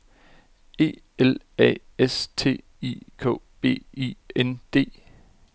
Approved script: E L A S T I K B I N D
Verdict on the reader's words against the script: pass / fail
pass